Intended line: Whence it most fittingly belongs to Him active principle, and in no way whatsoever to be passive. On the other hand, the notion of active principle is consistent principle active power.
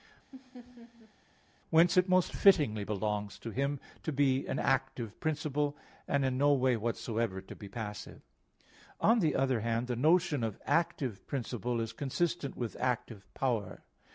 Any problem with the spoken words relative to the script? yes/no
yes